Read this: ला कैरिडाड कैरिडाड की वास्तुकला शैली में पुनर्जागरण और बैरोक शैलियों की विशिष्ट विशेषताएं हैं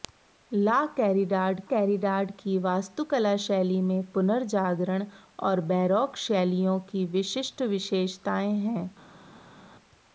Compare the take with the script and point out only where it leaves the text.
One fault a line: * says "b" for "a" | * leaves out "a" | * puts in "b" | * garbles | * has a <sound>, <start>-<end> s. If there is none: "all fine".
all fine